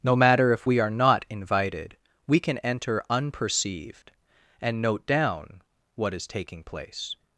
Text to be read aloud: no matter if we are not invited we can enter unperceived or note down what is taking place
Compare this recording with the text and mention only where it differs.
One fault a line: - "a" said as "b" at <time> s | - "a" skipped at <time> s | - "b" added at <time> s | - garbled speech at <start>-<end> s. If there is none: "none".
- "or" said as "and" at 4.6 s